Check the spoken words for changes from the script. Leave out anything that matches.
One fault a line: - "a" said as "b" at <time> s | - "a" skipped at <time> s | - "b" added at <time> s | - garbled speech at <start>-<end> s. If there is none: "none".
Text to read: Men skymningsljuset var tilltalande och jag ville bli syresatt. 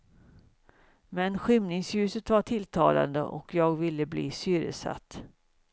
none